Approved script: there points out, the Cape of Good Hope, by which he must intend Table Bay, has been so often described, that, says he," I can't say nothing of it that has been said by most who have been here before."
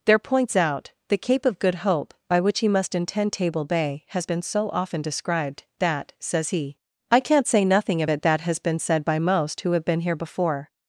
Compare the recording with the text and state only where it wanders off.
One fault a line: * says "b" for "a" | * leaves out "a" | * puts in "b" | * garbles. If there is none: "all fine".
all fine